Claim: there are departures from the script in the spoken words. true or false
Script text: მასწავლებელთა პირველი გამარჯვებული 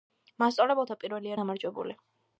false